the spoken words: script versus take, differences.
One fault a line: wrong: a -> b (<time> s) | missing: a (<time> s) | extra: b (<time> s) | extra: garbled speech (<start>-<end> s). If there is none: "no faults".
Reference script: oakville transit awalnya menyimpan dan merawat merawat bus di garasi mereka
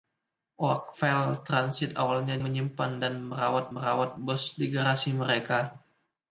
no faults